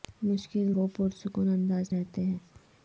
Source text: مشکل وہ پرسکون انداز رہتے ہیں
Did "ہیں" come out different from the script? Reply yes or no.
no